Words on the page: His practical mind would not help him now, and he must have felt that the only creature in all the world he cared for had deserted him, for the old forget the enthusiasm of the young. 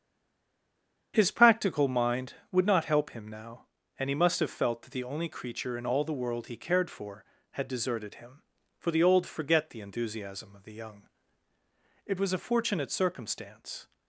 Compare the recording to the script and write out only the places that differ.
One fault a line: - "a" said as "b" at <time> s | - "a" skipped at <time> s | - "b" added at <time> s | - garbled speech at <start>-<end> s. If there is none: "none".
- "It was a fortunate circumstance" added at 12.0 s